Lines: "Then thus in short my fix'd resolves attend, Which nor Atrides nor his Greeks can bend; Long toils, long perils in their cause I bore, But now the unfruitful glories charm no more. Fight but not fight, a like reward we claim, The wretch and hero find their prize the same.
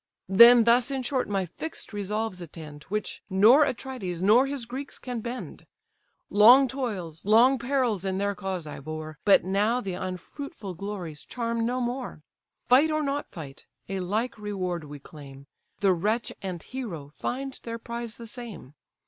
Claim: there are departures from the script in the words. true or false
true